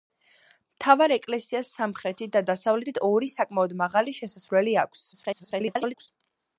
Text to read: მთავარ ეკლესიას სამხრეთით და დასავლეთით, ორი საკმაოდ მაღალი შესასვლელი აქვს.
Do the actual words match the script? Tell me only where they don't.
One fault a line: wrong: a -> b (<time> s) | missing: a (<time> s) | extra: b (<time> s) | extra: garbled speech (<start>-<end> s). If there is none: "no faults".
extra: garbled speech (5.1-6.1 s)